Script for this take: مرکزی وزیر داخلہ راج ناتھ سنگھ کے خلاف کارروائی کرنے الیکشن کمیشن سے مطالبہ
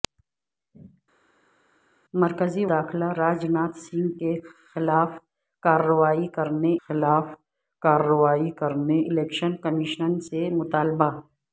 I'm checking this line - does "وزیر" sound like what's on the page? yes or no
no